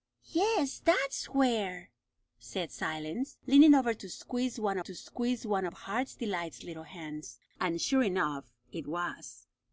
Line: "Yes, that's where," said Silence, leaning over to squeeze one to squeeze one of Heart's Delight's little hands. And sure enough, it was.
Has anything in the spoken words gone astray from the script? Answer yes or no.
no